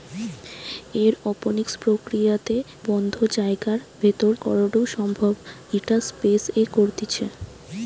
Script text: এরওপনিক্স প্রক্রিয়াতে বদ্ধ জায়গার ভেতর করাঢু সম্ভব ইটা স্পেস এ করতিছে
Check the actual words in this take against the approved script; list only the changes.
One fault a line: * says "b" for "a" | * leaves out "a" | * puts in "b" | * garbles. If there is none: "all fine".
all fine